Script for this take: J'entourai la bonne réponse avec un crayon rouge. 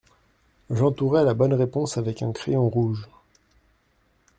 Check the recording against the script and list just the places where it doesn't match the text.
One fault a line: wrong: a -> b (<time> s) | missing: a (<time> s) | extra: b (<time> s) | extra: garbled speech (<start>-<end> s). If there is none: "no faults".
no faults